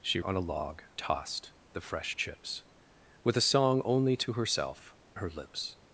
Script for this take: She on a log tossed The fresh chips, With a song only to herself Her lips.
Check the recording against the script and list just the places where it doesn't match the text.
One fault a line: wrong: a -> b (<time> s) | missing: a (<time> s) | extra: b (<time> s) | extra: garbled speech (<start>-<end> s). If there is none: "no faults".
no faults